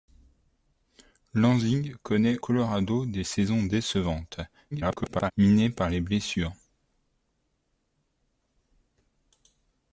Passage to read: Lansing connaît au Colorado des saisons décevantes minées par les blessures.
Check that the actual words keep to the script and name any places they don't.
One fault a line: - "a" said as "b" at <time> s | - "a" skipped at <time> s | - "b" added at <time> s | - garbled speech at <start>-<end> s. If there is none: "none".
- "au" skipped at 2.4 s
- garbled speech at 4.7-5.3 s